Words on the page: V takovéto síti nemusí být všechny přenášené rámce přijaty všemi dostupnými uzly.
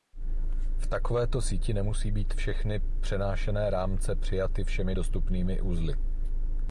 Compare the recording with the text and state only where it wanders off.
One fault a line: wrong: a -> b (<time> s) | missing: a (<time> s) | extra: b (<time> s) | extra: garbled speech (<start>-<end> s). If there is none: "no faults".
no faults